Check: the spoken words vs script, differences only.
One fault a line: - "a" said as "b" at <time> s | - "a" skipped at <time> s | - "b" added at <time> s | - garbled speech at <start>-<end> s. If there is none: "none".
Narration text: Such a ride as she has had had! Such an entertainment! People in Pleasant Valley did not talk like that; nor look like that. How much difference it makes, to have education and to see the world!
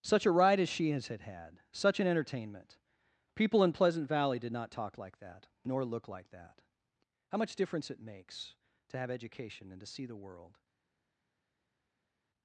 none